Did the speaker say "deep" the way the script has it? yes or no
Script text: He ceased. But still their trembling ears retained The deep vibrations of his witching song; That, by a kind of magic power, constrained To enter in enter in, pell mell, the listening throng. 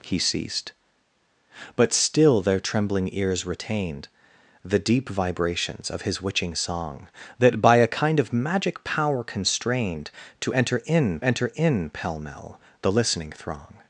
yes